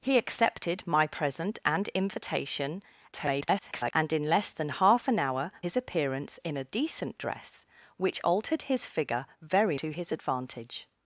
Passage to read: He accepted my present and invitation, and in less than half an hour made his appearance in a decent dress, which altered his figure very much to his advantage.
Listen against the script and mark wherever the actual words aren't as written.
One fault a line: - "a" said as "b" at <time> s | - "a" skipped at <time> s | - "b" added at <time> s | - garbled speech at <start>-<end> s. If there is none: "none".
- garbled speech at 3.1-3.9 s
- "made" skipped at 5.5 s
- "much" skipped at 9.8 s